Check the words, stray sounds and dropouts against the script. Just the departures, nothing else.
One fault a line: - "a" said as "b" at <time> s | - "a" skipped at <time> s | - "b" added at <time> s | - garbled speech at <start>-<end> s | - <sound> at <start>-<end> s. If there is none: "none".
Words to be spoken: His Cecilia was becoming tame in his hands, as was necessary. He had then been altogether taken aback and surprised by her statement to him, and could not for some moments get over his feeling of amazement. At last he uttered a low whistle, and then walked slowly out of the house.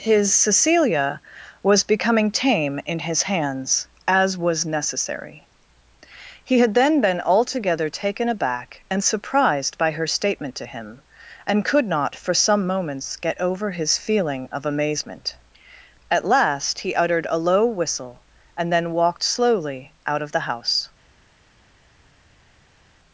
none